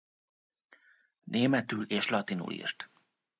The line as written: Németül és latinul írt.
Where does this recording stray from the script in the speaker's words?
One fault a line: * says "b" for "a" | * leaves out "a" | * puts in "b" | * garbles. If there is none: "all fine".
all fine